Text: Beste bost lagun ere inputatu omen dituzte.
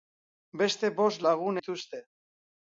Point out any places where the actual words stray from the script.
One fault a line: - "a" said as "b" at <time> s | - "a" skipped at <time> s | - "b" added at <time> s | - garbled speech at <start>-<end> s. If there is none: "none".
- "ere inputatu omen" skipped at 1.6 s